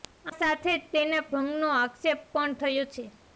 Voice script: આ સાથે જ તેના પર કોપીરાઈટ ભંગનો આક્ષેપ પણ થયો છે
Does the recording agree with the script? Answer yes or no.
no